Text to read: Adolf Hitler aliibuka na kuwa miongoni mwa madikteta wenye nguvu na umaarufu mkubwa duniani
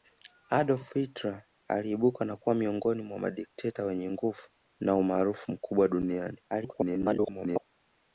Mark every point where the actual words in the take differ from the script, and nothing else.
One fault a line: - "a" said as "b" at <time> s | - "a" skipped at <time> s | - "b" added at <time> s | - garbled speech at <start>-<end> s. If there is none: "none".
- garbled speech at 6.5-7.6 s